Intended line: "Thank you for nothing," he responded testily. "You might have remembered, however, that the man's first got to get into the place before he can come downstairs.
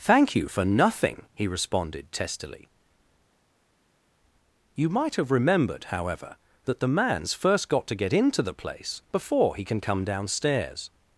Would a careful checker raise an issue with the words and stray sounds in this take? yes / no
no